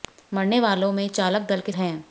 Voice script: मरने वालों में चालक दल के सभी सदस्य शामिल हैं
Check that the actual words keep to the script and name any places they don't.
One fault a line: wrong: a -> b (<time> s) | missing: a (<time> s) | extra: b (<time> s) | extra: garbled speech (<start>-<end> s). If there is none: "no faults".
missing: सभी सदस्य शामिल (1.7 s)